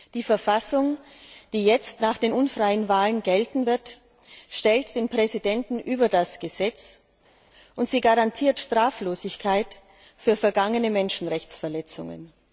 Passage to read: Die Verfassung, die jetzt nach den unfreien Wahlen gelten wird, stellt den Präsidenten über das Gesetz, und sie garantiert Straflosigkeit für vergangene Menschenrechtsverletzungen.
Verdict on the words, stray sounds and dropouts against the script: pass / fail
pass